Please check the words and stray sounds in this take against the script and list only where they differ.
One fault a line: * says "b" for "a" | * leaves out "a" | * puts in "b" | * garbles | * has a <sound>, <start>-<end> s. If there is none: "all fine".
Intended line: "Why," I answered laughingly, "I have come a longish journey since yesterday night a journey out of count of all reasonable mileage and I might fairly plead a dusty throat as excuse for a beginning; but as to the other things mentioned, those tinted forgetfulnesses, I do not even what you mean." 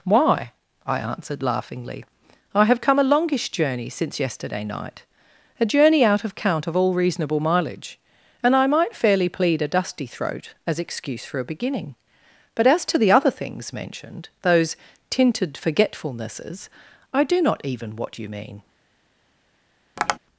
* has a tap, 20.0-20.2 s